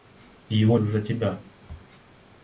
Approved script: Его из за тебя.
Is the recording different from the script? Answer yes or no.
no